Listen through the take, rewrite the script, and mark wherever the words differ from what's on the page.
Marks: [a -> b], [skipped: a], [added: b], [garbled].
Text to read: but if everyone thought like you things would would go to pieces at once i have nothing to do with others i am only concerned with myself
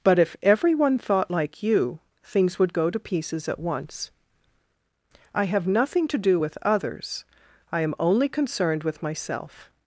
but if everyone thought like you things would [skipped: would] go to pieces at once i have nothing to do with others i am only concerned with myself